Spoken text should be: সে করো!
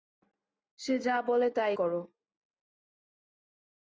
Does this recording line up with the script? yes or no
no